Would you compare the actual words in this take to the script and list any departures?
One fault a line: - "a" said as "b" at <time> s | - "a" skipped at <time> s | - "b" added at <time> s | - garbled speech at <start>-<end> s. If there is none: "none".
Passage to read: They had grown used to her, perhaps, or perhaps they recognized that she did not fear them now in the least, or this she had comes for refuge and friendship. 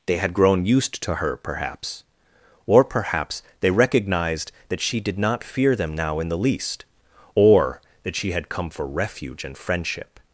- "this" said as "that" at 8.0 s
- "comes" said as "come" at 8.5 s